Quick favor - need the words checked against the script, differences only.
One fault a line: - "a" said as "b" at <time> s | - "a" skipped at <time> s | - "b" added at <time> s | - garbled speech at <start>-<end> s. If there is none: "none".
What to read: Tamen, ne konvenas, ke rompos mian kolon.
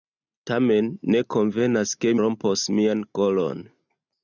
none